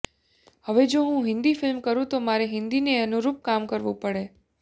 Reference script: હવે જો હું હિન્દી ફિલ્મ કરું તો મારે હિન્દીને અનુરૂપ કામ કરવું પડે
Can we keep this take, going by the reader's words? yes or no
yes